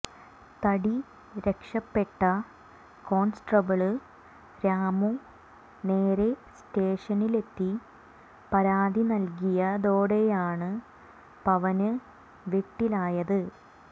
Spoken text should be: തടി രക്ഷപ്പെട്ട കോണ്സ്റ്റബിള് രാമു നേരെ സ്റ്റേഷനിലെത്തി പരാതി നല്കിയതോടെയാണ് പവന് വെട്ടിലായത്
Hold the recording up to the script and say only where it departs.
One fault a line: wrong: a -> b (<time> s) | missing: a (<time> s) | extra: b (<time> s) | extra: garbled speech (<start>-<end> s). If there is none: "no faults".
no faults